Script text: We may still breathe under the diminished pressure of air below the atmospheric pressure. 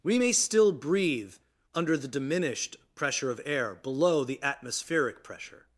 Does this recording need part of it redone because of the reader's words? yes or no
no